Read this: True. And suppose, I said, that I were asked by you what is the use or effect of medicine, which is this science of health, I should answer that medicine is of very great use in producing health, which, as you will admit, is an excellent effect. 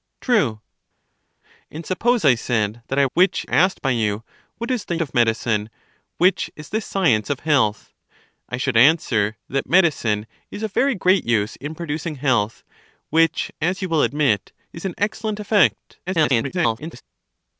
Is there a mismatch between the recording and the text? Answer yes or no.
yes